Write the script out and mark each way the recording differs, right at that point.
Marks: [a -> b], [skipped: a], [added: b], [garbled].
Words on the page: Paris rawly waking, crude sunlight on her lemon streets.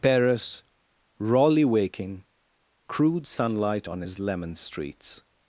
Paris rawly waking, crude sunlight on [her -> his] lemon streets.